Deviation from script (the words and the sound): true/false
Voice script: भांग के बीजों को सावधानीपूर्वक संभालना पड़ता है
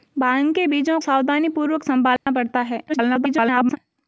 true